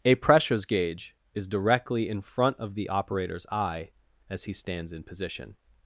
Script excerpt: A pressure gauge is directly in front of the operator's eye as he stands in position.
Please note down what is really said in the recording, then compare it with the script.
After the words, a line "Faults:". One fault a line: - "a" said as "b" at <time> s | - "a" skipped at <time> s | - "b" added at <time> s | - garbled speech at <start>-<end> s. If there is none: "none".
A pressures gauge is directly in front of the operator's eye as he stands in position.
Faults:
- "pressure" said as "pressures" at 0.1 s